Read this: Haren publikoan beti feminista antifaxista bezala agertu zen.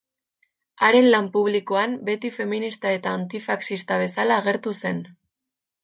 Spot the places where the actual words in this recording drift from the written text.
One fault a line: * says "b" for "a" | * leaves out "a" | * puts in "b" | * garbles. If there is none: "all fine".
* puts in "lan"
* puts in "eta"